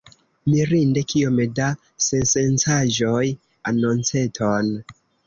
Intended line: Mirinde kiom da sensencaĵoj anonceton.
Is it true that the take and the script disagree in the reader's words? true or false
false